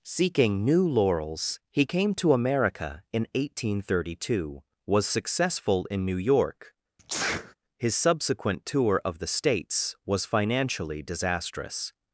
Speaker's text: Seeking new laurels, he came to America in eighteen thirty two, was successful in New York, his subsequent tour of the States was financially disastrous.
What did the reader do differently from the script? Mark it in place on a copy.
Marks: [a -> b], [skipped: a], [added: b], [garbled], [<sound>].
Seeking new laurels, he came to America in eighteen thirty two, was successful in New York, [sneeze] his subsequent tour of the States was financially disastrous.